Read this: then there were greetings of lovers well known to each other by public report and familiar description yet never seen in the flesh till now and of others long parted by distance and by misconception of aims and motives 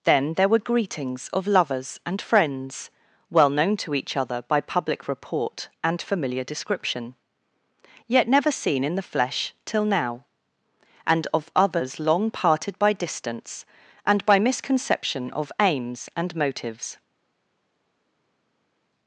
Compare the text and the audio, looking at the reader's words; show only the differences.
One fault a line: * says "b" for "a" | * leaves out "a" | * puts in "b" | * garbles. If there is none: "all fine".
* puts in "and friends"